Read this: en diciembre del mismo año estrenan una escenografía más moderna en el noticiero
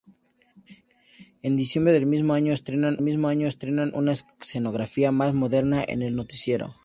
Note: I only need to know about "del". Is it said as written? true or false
true